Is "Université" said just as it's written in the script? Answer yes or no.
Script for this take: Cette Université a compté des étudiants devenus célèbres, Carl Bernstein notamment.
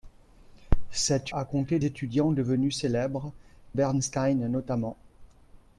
no